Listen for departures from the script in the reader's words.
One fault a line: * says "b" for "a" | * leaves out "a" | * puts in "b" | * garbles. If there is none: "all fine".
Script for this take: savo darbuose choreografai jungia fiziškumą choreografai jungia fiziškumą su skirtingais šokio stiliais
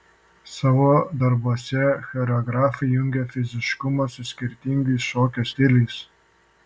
* leaves out "choreografai jungia fiziškumą"